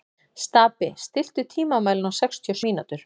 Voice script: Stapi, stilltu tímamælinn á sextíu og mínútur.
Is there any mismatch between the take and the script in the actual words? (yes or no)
no